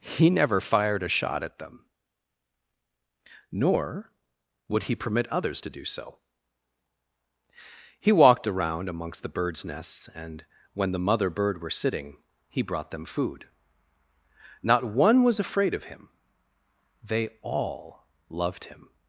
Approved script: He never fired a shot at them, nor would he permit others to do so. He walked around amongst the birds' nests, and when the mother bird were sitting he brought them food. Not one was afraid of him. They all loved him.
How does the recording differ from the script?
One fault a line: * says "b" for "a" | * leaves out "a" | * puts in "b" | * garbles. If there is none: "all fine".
all fine